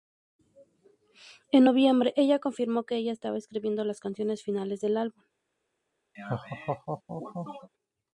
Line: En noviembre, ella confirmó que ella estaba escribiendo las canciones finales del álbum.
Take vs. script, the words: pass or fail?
pass